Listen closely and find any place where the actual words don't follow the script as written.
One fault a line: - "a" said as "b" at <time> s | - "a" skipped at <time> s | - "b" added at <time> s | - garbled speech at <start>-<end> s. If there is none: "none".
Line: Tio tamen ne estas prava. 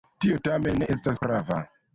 none